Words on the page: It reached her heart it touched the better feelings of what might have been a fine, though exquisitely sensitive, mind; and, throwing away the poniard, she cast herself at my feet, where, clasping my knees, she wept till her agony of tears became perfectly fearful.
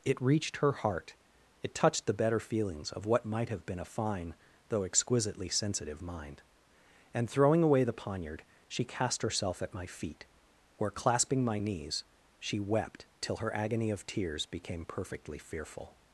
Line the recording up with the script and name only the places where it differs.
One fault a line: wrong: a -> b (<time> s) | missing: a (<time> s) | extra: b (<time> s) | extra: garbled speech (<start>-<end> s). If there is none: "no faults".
no faults